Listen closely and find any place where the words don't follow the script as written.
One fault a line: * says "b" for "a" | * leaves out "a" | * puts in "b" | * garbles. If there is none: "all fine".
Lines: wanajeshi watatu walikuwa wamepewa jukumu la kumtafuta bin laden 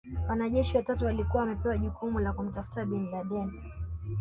all fine